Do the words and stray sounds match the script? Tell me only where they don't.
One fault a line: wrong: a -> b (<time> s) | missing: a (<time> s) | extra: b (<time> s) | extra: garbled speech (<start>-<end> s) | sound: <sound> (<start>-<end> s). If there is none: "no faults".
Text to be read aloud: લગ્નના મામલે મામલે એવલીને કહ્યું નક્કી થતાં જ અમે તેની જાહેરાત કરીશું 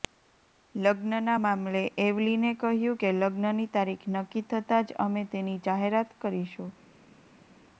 missing: મામલે (1.8 s)
extra: કે લગ્નની તારીખ (3.0 s)